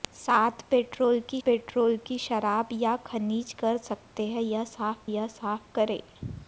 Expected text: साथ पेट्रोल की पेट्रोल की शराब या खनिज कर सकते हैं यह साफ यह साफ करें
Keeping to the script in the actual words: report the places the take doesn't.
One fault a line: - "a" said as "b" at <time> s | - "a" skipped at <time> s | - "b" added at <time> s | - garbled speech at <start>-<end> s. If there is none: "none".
none